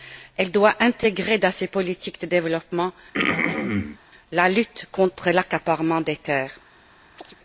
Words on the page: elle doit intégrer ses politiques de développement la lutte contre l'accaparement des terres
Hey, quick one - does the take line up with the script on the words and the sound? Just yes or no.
no